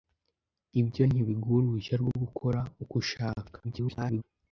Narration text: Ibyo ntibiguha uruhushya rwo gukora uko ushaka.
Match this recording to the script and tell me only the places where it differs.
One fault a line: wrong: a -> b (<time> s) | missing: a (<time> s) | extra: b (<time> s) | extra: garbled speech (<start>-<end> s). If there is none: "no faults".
extra: garbled speech (3.6-4.2 s)